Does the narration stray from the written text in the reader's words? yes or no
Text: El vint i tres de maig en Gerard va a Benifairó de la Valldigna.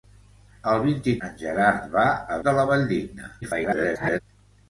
yes